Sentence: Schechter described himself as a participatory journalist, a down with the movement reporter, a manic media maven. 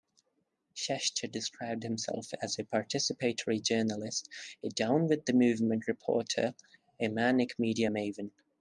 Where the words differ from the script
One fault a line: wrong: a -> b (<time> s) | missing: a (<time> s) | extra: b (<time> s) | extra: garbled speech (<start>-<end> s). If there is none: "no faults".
no faults